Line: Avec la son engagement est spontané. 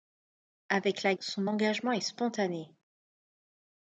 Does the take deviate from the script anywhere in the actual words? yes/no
no